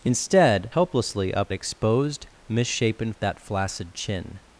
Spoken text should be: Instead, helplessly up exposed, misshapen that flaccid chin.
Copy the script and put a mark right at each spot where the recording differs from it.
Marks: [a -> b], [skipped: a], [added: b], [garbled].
Instead, helplessly up exposed, misshapen that flaccid chin.